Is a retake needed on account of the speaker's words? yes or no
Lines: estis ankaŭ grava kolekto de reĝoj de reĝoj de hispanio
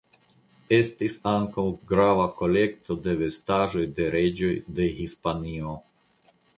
yes